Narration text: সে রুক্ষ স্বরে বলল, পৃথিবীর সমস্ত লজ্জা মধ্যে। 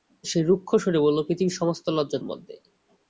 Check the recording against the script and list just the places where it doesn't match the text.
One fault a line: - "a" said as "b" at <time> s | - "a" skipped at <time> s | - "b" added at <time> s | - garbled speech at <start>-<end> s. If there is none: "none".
none